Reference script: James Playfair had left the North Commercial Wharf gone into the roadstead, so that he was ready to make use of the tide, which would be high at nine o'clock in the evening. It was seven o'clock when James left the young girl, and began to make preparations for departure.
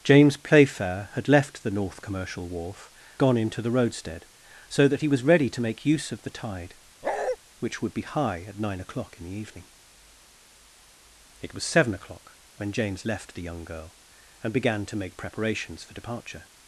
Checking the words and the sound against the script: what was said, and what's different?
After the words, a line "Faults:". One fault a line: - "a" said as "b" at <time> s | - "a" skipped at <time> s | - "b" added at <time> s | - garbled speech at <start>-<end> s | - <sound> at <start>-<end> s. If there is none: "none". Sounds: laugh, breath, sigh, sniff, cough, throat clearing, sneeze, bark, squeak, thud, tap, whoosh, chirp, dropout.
James Playfair had left the North Commercial Wharf gone into the roadstead, so that he was ready to make use of the tide, which would be high at nine o'clock in the evening. It was seven o'clock when James left the young girl, and began to make preparations for departure.
Faults:
- bark at 7.0-7.4 s